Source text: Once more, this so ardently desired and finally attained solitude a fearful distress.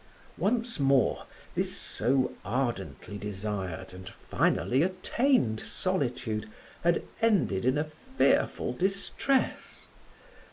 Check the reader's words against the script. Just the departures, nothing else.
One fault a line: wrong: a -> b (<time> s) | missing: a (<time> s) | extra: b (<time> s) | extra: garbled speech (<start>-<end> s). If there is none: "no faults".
extra: had ended in (6.8 s)